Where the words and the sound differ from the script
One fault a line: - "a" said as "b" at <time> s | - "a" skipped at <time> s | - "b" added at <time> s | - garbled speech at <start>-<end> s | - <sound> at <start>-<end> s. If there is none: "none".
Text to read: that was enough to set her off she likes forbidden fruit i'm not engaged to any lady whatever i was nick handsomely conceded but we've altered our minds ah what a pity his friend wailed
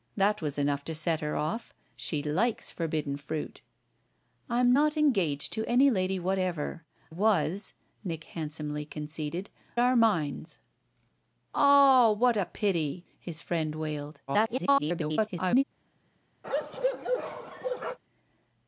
- "i" skipped at 6.8 s
- "but we've altered" skipped at 9.5 s
- garbled speech at 14.3-15.6 s
- bark at 16.4-18.0 s